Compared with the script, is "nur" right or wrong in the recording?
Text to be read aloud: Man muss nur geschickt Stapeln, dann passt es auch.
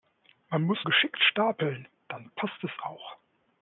wrong